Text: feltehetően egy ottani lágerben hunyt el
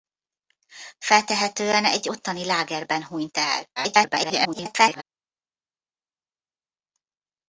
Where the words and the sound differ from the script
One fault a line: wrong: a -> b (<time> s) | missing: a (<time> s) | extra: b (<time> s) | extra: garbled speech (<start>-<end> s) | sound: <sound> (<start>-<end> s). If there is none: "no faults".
extra: garbled speech (3.8-5.0 s)